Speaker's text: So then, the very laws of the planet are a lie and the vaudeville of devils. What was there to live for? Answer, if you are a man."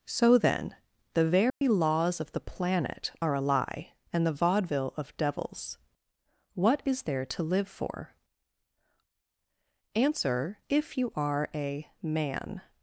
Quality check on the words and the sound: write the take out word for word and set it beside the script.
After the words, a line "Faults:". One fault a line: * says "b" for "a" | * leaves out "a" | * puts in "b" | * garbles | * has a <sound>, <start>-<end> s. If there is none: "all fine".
So then, the very laws of the planet are a lie and the vaudeville of devils. What is there to live for? Answer, if you are a man."
Faults:
* has a dropout, 1.5-1.6 s
* says "is" for "was"